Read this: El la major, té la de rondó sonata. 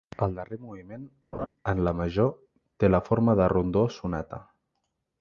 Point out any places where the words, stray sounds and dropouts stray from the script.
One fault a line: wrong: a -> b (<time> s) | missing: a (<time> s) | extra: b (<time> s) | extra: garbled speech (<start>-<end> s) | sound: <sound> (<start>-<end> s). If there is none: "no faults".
extra: darrer moviment en (0.4 s)
sound: laugh (1.3-1.5 s)
extra: forma (3.1 s)